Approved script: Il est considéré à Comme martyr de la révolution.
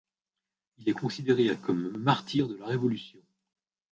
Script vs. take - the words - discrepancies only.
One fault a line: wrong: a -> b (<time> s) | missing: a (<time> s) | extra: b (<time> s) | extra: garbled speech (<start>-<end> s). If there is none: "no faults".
no faults